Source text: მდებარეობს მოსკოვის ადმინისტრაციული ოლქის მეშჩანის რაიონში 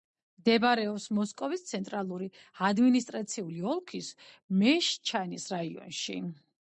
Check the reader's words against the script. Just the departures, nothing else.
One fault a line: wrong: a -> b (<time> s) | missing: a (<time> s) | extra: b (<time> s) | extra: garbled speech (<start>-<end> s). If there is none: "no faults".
extra: ცენტრალური (1.7 s)